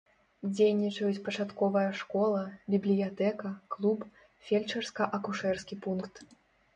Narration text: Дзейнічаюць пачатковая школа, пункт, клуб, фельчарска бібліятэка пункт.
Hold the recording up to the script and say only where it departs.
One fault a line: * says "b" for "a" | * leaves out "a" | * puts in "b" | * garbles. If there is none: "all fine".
* says "бібліятэка" for "пункт"
* says "акушэрскі" for "бібліятэка"